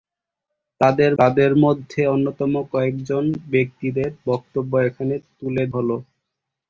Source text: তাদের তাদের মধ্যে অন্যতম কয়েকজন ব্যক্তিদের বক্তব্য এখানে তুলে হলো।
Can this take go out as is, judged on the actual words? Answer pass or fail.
pass